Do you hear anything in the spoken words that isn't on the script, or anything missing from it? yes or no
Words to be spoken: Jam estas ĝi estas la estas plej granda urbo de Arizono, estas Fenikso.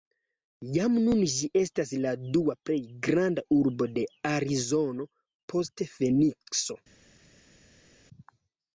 yes